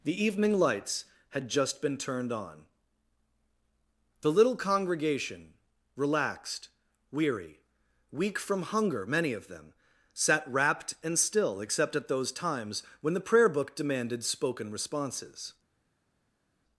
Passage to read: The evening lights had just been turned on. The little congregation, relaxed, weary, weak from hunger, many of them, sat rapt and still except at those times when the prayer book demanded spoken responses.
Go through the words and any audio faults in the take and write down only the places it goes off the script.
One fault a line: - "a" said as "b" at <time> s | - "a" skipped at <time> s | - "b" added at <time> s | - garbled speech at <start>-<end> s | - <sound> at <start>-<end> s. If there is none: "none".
none